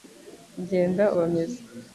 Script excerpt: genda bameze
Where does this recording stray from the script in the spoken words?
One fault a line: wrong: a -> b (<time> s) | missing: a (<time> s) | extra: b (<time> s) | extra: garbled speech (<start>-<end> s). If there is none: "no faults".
no faults